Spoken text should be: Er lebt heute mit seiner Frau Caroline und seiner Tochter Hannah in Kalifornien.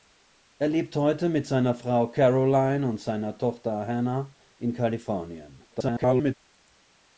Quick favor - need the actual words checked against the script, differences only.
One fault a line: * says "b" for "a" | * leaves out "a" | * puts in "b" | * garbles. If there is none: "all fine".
* garbles